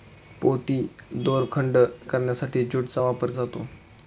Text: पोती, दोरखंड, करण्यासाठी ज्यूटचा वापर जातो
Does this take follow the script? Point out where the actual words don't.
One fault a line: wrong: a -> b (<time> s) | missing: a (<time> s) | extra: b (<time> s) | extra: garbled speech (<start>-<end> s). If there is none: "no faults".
no faults